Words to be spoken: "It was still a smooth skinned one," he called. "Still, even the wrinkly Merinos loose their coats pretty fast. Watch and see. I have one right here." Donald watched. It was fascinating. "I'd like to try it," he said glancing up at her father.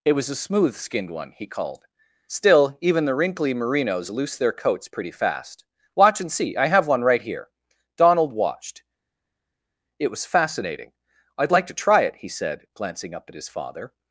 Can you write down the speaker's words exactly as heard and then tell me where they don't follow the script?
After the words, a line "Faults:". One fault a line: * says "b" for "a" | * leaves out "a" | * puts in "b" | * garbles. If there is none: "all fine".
"It was a smooth skinned one," he called. "Still, even the wrinkly Merinos loose their coats pretty fast. Watch and see. I have one right here." Donald watched. It was fascinating. "I'd like to try it," he said glancing up at his father.
Faults:
* leaves out "still"
* says "his" for "her"